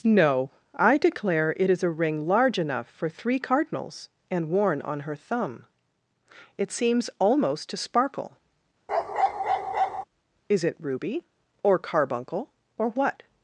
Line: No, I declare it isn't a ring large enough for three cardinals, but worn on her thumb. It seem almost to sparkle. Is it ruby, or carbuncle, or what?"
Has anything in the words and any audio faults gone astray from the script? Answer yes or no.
yes